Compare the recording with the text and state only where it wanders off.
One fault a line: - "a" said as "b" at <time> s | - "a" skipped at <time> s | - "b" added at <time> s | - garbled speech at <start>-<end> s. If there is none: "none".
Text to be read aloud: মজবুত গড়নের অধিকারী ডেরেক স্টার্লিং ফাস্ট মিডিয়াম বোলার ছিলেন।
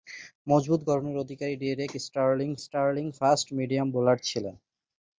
- "স্টার্লিং" added at 2.6 s